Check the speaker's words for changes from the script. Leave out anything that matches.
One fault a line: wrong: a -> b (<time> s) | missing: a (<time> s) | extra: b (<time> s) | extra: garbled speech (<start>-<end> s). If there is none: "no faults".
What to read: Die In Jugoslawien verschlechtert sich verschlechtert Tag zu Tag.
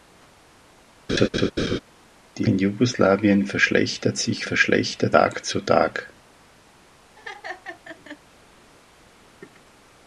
no faults